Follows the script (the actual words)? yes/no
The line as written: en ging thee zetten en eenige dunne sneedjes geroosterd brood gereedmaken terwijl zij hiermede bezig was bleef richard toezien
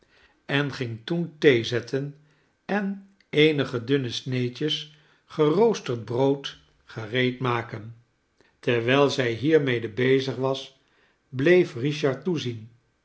no